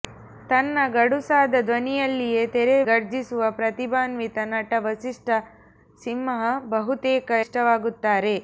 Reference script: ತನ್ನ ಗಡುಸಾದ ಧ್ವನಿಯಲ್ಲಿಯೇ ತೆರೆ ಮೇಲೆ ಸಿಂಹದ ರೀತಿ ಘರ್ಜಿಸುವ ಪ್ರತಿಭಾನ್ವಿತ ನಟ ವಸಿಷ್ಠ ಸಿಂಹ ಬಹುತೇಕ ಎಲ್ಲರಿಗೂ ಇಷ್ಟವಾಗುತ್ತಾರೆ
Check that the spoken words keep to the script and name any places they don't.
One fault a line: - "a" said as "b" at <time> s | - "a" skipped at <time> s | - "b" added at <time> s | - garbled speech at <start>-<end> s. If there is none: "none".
- "ಮೇಲೆ ಸಿಂಹದ ರೀತಿ" skipped at 2.8 s
- "ಎಲ್ಲರಿಗೂ" skipped at 7.3 s